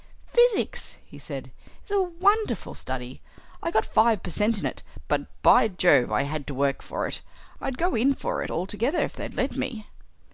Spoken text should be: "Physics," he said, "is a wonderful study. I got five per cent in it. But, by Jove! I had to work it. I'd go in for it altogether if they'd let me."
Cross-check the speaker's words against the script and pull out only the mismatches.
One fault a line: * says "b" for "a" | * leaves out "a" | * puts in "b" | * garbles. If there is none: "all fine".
* puts in "for"